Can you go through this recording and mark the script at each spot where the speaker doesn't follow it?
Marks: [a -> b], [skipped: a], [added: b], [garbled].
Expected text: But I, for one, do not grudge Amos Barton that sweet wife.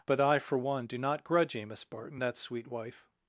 But I, for one, do not grudge Amos Barton that sweet wife.